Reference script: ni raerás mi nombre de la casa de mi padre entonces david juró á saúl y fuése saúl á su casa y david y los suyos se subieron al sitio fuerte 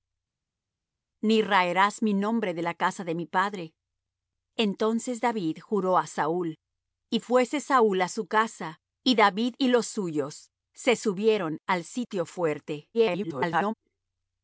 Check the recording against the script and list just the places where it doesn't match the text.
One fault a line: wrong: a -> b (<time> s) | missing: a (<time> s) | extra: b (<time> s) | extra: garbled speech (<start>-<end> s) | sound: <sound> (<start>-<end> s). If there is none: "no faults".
extra: garbled speech (12.9-13.7 s)